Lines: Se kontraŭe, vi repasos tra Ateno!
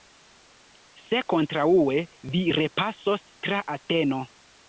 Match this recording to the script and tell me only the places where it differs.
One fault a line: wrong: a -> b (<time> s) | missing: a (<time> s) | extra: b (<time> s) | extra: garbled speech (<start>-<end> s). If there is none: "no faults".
no faults